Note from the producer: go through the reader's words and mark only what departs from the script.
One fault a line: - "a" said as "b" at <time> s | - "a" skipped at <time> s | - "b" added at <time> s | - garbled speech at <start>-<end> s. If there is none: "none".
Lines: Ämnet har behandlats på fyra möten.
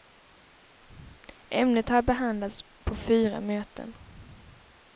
none